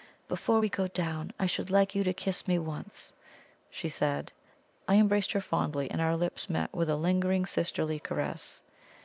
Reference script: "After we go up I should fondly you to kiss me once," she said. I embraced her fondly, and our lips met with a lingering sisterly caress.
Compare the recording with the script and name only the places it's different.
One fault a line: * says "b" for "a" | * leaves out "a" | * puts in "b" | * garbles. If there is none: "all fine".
* says "Before" for "After"
* says "down" for "up"
* says "like" for "fondly"